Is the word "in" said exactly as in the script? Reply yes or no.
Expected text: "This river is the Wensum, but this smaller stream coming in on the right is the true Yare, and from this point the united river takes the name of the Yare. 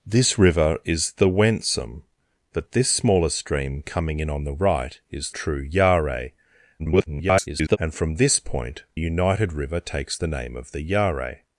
yes